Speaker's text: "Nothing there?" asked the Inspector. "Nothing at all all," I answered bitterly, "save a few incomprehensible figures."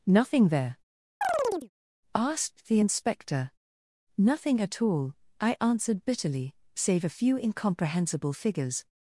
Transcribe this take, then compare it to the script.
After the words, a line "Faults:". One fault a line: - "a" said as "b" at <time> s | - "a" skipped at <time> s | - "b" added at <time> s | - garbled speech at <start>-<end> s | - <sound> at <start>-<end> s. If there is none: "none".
"Nothing there?" asked the Inspector. "Nothing at all," I answered bitterly, "save a few incomprehensible figures."
Faults:
- chirp at 1.2-1.7 s
- "all" skipped at 5.2 s